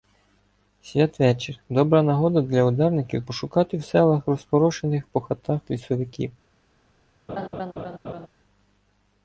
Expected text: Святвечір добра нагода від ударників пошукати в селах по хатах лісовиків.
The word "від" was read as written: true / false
false